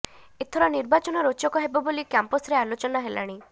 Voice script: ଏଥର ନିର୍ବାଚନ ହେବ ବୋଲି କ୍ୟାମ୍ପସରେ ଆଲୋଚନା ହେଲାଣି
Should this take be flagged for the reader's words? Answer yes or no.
yes